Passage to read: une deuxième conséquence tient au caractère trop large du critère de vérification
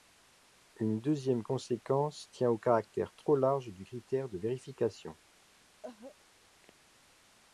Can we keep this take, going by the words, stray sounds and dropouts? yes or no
no